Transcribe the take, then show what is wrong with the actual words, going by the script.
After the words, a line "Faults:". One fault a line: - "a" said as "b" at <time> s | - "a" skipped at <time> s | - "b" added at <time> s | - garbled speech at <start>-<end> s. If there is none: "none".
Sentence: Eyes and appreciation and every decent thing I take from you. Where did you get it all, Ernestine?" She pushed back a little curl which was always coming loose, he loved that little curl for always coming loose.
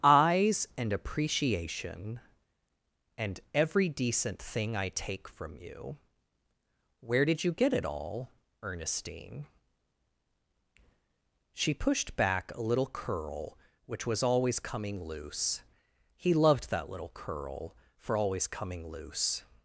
Eyes and appreciation and every decent thing I take from you. Where did you get it all, Ernestine?" She pushed back a little curl which was always coming loose, he loved that little curl for always coming loose.
Faults:
none